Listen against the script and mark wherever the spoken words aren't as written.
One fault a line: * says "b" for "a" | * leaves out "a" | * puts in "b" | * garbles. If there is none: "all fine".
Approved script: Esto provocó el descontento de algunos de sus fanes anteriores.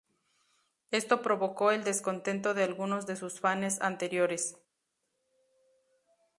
all fine